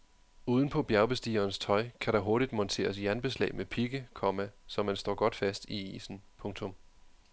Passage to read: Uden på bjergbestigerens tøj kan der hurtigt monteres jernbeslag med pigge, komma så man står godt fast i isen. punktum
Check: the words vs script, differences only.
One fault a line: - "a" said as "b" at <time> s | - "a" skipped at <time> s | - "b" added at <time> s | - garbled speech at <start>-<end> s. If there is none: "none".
none